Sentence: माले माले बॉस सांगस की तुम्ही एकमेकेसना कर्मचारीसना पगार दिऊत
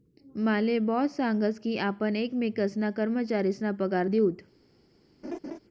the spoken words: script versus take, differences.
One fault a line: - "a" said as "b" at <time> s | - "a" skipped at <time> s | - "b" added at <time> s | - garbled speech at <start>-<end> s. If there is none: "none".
- "माले" skipped at 0.8 s
- "तुम्ही" said as "आपण" at 1.8 s